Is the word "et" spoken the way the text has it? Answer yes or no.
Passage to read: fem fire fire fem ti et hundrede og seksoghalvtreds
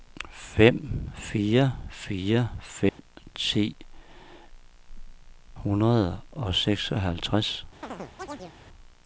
no